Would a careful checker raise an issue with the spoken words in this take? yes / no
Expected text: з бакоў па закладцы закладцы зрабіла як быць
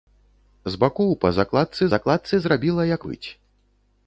no